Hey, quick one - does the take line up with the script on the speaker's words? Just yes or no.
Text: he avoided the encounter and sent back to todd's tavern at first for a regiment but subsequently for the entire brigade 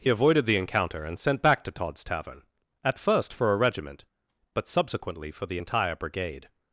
yes